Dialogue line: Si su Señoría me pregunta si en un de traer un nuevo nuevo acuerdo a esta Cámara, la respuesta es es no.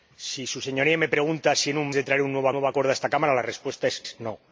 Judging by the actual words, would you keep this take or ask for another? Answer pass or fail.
pass